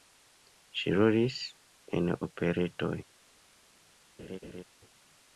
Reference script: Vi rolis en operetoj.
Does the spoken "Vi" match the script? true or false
false